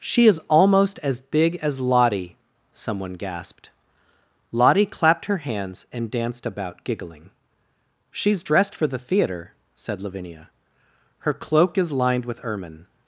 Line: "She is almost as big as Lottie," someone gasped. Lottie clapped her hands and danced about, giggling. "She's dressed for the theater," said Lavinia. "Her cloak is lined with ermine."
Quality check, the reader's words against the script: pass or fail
pass